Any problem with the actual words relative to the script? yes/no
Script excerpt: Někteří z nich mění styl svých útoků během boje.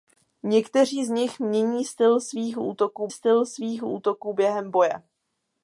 yes